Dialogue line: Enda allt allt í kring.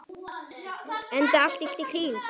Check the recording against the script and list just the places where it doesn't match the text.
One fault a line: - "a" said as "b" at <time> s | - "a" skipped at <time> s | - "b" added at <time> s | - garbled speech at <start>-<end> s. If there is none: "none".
none